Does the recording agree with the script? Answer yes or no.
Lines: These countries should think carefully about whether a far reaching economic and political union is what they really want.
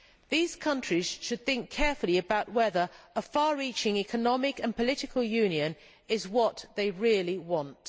yes